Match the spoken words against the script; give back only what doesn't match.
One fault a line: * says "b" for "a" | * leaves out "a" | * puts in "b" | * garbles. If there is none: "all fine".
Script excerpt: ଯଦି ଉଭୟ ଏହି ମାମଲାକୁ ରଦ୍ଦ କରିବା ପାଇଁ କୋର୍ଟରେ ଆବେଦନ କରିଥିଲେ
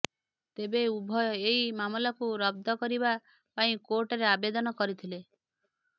* says "ତେବେ" for "ଯଦି"